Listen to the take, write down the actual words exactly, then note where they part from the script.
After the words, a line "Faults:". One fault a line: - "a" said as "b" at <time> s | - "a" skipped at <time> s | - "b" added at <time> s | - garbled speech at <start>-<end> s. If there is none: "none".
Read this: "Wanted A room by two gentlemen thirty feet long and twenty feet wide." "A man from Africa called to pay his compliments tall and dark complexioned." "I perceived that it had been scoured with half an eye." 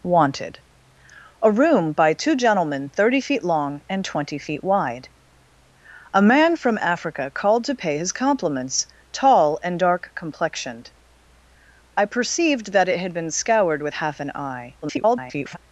"Wanted A room by two gentlemen thirty feet long and twenty feet wide." "A man from Africa called to pay his compliments tall and dark complexioned." "I perceived that it had been scoured with half an eye." [garbled]
Faults:
- garbled speech at 14.8-15.6 s